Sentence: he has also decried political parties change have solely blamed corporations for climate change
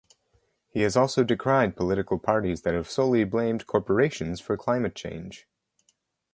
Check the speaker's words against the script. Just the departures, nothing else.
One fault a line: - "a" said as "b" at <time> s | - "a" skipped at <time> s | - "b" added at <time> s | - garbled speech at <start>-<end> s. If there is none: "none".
- "change" said as "that" at 2.6 s